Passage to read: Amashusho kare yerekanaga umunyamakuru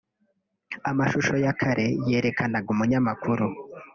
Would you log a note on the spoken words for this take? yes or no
yes